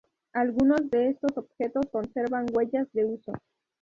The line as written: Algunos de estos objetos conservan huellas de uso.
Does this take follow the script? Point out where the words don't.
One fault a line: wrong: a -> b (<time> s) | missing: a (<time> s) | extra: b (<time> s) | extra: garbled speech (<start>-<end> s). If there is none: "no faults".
no faults